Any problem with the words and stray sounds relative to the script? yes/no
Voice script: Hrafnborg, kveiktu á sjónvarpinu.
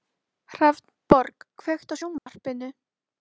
yes